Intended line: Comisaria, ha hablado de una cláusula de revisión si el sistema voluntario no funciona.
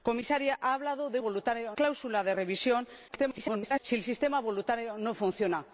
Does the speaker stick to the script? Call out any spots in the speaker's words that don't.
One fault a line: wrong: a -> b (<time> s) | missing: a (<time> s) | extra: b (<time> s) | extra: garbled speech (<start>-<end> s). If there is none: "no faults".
wrong: una -> voluntario (1.2 s)
extra: garbled speech (3.1-3.8 s)